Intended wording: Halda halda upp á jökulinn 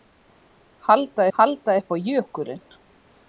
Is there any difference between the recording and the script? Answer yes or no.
no